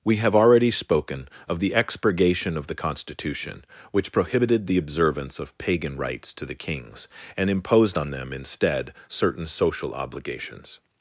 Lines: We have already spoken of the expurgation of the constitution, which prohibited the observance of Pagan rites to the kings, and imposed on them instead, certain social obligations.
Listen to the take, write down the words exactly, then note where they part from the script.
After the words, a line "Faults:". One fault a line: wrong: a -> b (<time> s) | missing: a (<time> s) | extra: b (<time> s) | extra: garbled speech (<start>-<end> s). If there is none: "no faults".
We have already spoken of the expurgation of the constitution, which prohibited the observance of Pagan rites to the kings, and imposed on them instead, certain social obligations.
Faults:
no faults